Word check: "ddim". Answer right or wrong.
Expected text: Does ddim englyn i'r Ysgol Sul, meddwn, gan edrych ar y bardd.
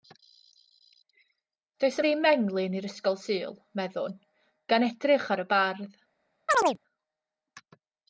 right